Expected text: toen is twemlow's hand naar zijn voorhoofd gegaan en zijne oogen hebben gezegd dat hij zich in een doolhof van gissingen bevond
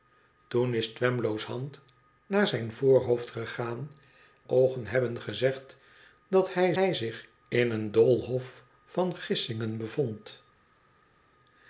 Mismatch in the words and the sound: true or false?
true